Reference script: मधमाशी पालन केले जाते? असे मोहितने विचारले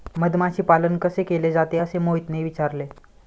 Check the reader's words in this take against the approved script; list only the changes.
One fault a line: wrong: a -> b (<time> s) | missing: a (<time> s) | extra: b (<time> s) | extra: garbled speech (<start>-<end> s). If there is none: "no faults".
extra: कसे (1.0 s)